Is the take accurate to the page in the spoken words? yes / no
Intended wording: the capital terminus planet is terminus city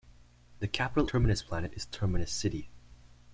yes